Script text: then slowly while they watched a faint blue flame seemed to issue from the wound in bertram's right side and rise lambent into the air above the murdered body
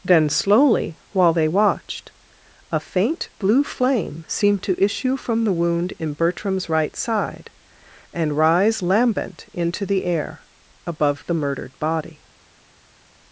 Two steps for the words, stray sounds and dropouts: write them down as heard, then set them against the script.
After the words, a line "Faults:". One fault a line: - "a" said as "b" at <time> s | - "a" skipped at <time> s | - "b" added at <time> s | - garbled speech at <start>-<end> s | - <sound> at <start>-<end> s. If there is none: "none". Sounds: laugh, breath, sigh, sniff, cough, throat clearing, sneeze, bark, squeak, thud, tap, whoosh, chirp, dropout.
then slowly while they watched a faint blue flame seemed to issue from the wound in bertram's right side and rise lambent into the air above the murdered body
Faults:
none